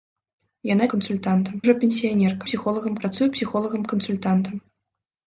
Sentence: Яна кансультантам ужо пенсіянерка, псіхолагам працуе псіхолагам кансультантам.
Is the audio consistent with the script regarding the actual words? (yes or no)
yes